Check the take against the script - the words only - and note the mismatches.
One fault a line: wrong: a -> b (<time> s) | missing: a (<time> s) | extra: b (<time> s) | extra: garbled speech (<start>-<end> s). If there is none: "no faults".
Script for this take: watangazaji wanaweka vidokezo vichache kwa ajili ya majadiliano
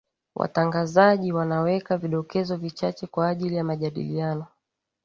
no faults